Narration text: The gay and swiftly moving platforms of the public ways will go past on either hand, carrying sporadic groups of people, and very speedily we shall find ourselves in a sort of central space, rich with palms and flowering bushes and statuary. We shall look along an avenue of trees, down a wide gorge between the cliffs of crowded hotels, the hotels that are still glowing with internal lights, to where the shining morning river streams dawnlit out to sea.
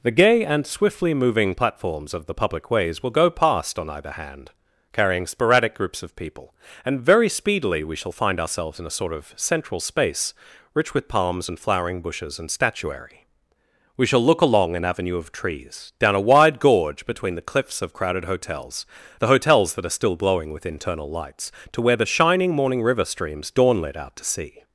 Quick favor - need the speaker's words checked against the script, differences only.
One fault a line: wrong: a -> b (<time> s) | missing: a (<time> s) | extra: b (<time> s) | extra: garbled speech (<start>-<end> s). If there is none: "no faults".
no faults